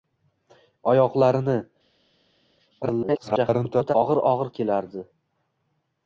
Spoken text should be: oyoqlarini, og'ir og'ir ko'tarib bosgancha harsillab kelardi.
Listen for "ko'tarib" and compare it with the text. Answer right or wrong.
wrong